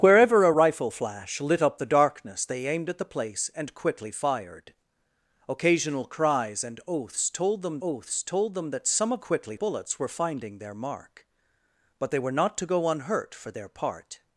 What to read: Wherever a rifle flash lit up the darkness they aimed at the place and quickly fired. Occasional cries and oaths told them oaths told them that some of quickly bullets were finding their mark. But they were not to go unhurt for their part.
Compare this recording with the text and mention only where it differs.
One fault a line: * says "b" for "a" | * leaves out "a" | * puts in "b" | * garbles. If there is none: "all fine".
all fine